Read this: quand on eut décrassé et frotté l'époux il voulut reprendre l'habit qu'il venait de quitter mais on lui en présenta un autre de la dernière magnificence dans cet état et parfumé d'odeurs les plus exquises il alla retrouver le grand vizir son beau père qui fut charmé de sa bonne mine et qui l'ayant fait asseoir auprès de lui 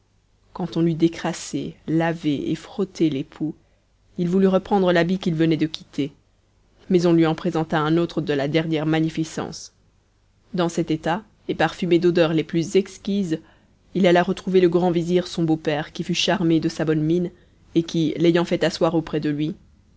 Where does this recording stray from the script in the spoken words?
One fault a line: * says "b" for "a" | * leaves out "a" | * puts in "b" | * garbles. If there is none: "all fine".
* puts in "lavé"